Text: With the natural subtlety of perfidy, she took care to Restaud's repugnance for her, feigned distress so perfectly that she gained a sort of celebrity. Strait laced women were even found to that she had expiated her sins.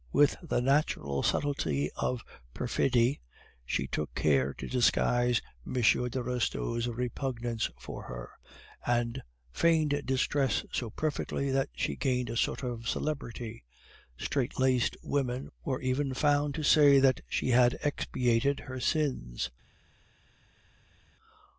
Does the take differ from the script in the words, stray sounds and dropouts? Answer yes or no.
yes